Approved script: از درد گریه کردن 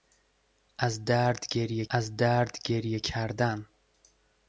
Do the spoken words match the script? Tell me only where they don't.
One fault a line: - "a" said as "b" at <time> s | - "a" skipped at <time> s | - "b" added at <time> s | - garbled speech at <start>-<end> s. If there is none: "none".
- "از درد گریه" added at 1.9 s